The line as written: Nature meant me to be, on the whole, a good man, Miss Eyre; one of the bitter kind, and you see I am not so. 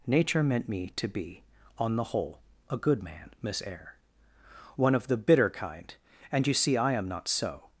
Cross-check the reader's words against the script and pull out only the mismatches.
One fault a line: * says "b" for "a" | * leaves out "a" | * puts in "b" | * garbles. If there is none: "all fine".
all fine